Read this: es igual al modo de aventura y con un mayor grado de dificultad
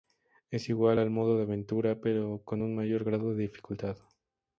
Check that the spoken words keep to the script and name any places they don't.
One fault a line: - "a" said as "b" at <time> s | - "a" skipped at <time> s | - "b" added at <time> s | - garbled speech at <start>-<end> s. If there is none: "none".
- "y" said as "pero" at 2.0 s